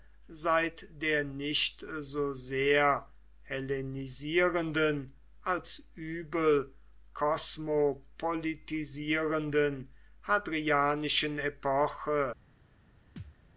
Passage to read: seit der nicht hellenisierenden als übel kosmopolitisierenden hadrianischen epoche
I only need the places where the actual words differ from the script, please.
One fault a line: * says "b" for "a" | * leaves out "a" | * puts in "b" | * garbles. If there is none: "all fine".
* puts in "so sehr"